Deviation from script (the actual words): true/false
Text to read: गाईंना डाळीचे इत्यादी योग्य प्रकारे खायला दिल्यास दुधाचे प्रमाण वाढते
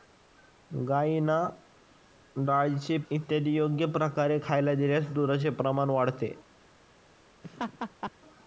false